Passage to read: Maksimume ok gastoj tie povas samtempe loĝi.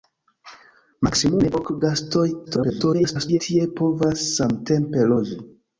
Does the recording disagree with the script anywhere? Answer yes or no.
yes